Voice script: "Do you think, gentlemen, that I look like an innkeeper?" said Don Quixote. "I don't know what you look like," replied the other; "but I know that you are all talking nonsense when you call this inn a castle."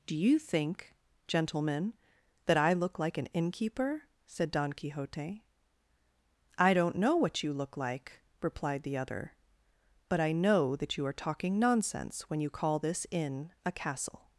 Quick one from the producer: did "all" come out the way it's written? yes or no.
no